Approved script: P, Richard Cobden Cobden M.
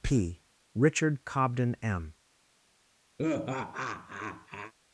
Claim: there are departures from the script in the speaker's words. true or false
true